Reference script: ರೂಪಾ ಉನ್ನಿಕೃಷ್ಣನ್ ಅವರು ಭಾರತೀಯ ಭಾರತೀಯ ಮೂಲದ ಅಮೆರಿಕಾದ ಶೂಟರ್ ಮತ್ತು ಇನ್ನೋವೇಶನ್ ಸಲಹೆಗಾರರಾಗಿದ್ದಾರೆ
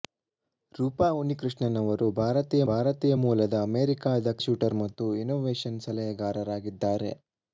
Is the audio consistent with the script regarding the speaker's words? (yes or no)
yes